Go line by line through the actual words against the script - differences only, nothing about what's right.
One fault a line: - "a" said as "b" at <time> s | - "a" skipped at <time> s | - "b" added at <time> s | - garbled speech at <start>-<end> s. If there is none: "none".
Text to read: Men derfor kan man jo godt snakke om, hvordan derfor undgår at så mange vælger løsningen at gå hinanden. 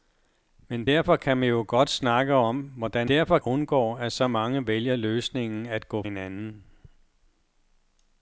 none